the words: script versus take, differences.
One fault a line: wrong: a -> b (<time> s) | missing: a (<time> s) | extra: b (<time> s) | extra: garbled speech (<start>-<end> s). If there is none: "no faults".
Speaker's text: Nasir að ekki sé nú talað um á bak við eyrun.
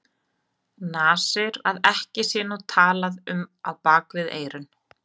no faults